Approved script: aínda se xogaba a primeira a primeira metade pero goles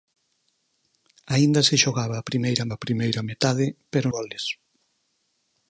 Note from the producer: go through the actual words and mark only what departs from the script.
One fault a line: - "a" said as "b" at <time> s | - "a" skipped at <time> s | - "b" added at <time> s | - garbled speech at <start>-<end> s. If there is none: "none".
none